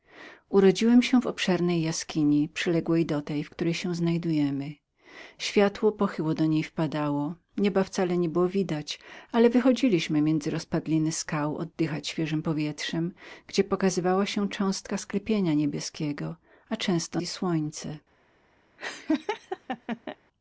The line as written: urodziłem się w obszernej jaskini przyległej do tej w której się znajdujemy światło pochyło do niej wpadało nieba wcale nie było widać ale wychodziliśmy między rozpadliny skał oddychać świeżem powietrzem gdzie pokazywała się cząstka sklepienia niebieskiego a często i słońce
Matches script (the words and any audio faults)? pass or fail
fail